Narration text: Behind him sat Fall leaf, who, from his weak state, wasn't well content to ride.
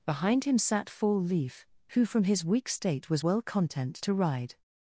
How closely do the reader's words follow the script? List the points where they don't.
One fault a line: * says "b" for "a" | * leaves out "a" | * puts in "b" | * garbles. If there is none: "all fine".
* says "was" for "wasn't"